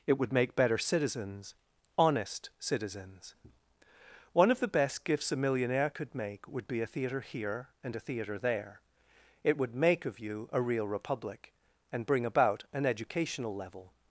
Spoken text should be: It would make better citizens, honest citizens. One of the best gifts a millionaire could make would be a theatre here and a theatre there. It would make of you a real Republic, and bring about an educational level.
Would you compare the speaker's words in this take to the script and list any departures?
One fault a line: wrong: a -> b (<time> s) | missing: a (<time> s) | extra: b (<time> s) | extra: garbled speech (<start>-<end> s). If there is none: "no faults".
no faults